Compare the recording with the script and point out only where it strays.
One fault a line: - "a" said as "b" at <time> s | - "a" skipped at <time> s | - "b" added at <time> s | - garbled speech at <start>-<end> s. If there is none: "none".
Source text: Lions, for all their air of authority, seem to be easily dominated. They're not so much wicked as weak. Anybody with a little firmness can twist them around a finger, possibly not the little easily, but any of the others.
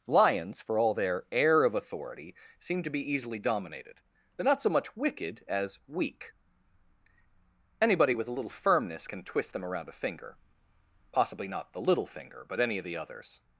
- "easily" said as "finger" at 12.1 s